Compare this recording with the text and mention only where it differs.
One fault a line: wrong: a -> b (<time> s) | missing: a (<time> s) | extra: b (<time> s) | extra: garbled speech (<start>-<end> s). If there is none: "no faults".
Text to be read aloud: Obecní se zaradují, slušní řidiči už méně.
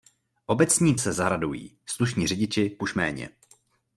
no faults